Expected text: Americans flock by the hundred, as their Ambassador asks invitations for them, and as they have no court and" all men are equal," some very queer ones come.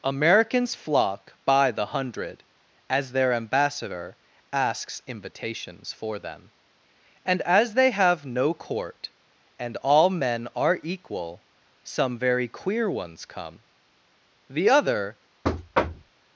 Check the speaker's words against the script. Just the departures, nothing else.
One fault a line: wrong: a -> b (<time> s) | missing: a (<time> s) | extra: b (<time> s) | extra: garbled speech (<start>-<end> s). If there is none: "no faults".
extra: The other (14.5 s)